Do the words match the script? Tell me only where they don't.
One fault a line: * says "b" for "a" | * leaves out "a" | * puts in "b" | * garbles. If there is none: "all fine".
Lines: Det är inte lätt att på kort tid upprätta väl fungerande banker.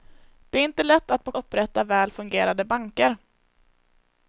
* leaves out "kort tid"